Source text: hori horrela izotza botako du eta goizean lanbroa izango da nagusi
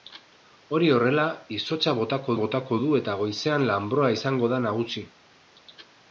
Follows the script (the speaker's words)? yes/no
no